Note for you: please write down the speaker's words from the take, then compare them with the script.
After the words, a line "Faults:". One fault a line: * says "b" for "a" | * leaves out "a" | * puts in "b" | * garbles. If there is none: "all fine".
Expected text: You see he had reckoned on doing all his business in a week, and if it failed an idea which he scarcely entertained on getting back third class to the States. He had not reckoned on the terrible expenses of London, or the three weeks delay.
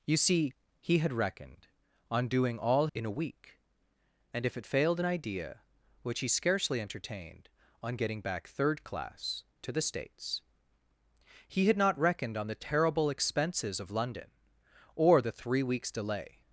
You see he had reckoned on doing all in a week, and if it failed an idea which he scarcely entertained on getting back third class to the States. He had not reckoned on the terrible expenses of London, or the three weeks delay.
Faults:
* leaves out "his business"